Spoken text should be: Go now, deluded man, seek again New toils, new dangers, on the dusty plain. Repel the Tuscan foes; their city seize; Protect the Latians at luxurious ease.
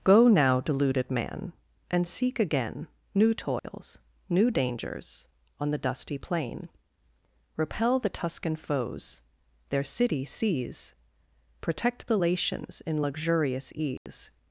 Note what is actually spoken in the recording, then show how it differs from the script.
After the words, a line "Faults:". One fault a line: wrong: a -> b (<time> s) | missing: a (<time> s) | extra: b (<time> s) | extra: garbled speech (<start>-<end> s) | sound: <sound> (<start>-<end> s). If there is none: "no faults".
Go now, deluded man, and seek again New toils, new dangers, on the dusty plain. Repel the Tuscan foes; their city seize; Protect the Latians in luxurious ease.
Faults:
extra: and (1.9 s)
sound: dropout (3.6-3.6 s)
wrong: at -> in (12.8 s)
sound: dropout (14.0-14.1 s)